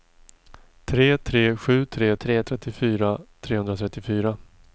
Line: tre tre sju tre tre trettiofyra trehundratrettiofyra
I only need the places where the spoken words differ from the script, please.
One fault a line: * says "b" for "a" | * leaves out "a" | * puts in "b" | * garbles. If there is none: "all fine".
all fine